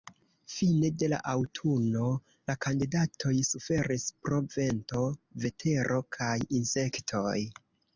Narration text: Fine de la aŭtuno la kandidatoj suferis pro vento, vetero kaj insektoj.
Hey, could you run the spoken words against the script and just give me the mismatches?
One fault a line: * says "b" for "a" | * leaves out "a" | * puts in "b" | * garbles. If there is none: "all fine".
all fine